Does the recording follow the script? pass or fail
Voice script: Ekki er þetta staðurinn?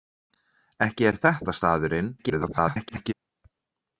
fail